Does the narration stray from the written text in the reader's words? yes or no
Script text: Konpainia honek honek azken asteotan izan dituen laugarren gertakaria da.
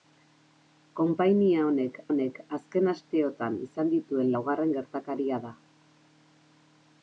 no